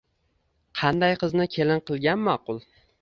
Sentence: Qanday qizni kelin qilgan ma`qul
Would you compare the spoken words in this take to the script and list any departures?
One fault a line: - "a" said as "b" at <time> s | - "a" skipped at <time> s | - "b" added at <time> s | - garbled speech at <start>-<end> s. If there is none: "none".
none